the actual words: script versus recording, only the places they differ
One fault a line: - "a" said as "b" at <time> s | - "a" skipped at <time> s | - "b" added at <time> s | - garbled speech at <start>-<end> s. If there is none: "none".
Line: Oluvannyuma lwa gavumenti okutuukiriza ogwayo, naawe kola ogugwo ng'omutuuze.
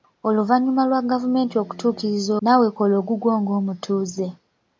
- "ogwayo" skipped at 2.3 s